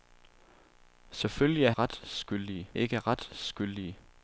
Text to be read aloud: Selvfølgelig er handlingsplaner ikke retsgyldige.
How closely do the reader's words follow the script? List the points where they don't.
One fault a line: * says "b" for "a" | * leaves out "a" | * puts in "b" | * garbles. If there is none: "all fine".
* says "retsgyldige" for "handlingsplaner"